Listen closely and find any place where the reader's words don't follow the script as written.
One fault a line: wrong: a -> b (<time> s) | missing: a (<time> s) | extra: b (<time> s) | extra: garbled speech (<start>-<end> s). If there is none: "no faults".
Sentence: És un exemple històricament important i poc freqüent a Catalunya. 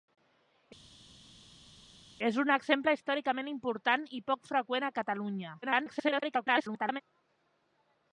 extra: garbled speech (5.6-7.0 s)